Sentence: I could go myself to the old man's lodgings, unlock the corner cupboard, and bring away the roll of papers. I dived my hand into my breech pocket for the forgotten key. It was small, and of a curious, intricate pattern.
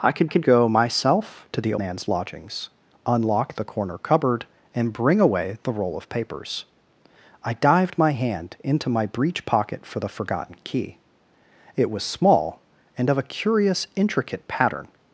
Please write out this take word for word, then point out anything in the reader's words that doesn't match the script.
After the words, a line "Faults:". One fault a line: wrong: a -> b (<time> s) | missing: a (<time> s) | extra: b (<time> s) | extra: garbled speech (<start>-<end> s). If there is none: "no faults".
I could could go myself to the man's lodgings, unlock the corner cupboard, and bring away the roll of papers. I dived my hand into my breech pocket for the forgotten key. It was small, and of a curious, intricate pattern.
Faults:
extra: could (0.3 s)
missing: old (1.7 s)